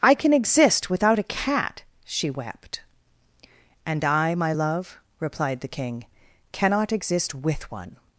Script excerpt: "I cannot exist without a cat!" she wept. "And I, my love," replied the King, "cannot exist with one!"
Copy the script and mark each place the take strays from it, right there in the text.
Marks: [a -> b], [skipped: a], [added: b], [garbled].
"I [cannot -> can] exist without a cat!" she wept. "And I, my love," replied the King, "cannot exist with one!"